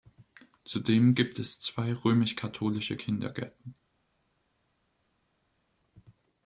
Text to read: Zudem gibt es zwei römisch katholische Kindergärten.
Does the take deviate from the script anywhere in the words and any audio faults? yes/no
no